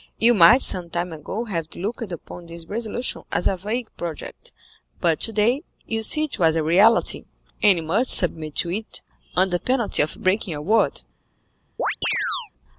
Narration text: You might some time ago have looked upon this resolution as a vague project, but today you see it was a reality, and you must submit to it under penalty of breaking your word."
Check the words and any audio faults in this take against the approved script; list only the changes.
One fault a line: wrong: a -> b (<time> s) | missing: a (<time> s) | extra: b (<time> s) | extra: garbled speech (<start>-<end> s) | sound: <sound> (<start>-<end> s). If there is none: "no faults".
sound: chirp (11.8-12.5 s)